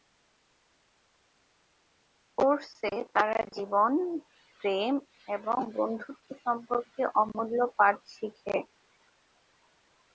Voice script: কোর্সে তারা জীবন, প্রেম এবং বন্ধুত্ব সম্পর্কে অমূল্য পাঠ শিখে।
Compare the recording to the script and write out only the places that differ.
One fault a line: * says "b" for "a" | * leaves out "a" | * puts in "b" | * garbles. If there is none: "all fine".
all fine